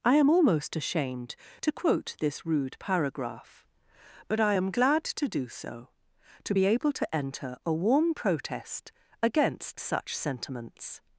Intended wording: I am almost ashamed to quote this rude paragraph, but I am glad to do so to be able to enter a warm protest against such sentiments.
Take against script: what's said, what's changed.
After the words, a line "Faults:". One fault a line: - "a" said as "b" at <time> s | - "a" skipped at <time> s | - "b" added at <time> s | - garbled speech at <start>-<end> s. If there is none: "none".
I am almost ashamed to quote this rude paragraph, but I am glad to do so to be able to enter a warm protest against such sentiments.
Faults:
none